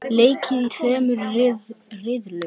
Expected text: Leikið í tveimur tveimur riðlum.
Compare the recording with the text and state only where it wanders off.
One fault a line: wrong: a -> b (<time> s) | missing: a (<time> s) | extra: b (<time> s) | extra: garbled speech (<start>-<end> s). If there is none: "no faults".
missing: tveimur (1.2 s)